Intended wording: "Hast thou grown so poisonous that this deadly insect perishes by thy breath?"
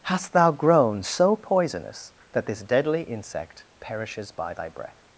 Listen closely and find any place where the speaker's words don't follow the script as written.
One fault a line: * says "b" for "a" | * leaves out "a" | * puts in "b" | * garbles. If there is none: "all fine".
all fine